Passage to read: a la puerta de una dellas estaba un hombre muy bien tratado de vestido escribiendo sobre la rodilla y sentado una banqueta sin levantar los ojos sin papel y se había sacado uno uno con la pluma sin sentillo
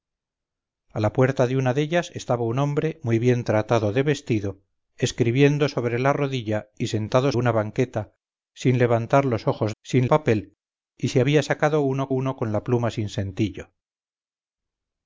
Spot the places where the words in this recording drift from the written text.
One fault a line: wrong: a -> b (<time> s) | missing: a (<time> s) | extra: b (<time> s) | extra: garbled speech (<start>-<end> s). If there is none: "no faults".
no faults